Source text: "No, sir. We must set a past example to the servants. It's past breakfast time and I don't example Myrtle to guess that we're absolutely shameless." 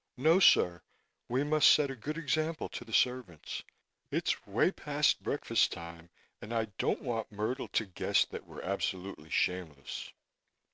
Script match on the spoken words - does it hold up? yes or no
no